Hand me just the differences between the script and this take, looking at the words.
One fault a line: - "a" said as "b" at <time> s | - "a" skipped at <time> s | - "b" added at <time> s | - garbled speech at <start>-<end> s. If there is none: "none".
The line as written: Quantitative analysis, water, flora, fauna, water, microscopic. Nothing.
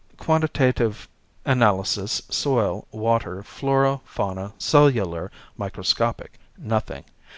- "soil" added at 2.3 s
- "water" said as "cellular" at 4.6 s